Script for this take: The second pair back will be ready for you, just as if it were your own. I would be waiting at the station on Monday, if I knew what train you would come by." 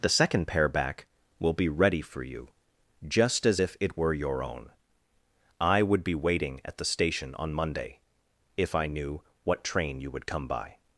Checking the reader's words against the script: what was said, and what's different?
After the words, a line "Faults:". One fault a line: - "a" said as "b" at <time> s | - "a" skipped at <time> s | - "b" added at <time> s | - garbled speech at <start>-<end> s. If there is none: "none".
The second pair back will be ready for you, just as if it were your own. I would be waiting at the station on Monday, if I knew what train you would come by."
Faults:
none